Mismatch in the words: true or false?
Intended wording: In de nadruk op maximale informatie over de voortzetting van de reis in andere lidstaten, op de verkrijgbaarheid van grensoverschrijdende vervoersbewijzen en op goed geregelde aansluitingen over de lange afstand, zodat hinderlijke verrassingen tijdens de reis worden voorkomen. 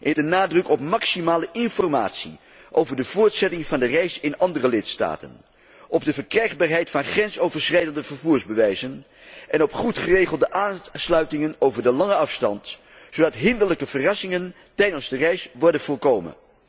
false